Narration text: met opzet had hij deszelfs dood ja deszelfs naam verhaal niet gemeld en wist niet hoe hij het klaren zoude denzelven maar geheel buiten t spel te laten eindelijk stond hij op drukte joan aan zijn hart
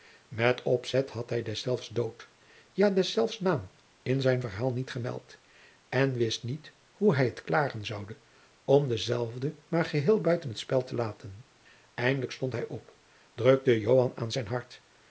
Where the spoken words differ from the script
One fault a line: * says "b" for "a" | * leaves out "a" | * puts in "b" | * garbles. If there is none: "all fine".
* puts in "in zijn"
* puts in "om"